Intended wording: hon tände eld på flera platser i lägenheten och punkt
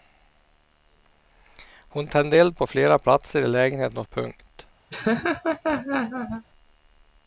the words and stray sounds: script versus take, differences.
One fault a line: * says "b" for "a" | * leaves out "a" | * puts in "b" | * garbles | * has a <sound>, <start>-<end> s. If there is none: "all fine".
* has a laugh, 4.9-6.5 s